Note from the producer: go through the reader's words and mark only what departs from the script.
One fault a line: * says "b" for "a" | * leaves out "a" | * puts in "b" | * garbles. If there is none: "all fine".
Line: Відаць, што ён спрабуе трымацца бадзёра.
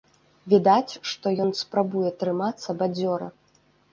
all fine